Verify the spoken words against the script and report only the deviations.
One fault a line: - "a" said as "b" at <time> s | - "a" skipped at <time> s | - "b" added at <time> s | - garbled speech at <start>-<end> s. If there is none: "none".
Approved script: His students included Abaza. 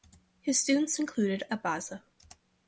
none